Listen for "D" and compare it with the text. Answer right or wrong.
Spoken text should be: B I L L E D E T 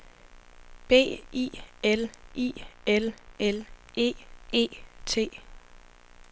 wrong